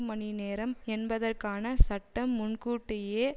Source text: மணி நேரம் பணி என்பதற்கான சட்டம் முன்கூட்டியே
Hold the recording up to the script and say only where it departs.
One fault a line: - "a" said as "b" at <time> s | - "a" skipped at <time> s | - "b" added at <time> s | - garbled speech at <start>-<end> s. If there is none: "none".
- "பணி" skipped at 0.8 s